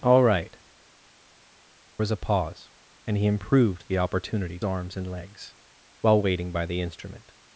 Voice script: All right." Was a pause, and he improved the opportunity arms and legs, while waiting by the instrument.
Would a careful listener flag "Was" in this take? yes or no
no